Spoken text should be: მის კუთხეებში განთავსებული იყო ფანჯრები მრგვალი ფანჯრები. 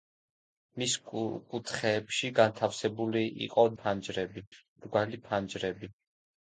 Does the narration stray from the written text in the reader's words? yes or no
no